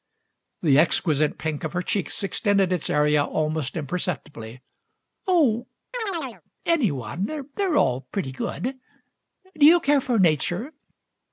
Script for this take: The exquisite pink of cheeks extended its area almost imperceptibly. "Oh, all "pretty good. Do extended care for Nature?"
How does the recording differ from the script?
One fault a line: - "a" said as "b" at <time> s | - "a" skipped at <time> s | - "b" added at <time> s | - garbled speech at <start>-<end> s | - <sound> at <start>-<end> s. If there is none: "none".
- "her" added at 1.7 s
- chirp at 5.9-6.4 s
- "any one They're" added at 6.7 s
- "extended" said as "you" at 9.7 s